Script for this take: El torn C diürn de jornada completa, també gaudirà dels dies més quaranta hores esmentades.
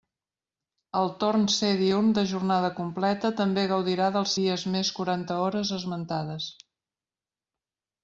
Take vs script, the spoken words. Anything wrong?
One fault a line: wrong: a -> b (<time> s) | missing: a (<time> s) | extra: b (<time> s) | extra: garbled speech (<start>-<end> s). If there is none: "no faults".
no faults